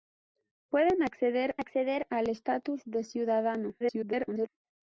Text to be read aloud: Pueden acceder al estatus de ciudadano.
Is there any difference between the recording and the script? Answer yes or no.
yes